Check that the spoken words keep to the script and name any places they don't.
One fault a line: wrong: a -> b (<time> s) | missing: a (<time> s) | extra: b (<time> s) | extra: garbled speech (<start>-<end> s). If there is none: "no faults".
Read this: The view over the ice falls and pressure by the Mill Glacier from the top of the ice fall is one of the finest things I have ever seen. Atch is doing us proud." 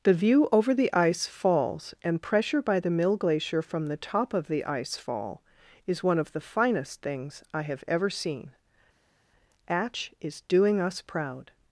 no faults